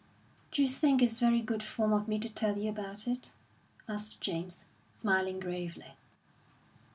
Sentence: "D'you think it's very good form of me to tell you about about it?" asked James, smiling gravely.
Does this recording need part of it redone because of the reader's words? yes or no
yes